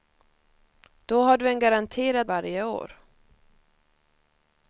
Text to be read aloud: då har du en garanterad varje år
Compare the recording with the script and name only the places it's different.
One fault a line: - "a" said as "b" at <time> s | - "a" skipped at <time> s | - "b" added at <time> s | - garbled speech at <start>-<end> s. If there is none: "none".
none